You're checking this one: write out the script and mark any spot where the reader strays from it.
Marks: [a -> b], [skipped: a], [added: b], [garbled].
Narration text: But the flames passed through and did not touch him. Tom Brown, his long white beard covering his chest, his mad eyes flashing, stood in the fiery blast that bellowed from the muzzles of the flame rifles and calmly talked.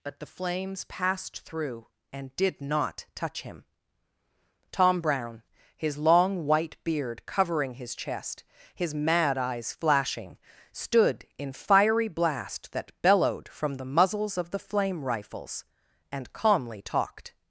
But the flames passed through and did not touch him. Tom Brown, his long white beard covering his chest, his mad eyes flashing, stood in [skipped: the] fiery blast that bellowed from the muzzles of the flame rifles and calmly talked.